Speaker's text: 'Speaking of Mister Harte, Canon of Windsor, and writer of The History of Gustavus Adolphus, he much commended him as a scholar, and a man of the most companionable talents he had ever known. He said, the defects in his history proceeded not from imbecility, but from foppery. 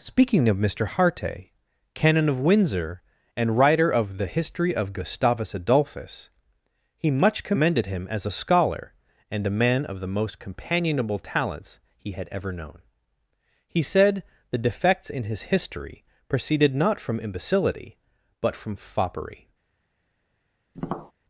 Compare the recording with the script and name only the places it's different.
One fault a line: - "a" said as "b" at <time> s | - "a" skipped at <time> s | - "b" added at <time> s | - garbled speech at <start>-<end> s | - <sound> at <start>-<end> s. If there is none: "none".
- tap at 20.7-21.1 s